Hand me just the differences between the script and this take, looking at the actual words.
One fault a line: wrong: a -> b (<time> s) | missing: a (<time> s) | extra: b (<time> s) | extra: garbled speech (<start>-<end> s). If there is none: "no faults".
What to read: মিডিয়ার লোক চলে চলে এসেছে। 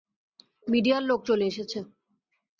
missing: চলে (1.5 s)